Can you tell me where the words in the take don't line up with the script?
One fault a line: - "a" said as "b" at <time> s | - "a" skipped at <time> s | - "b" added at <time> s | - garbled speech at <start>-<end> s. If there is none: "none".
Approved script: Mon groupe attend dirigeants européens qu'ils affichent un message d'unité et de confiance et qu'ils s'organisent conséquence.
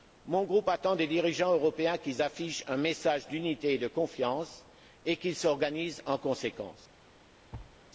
- "des" added at 0.9 s
- "en" added at 6.1 s